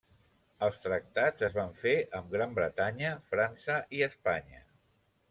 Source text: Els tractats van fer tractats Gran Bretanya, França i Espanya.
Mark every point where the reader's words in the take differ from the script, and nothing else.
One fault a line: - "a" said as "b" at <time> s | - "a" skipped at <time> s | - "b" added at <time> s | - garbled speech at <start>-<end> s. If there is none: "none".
- "es" added at 1.4 s
- "tractats" said as "amb" at 2.2 s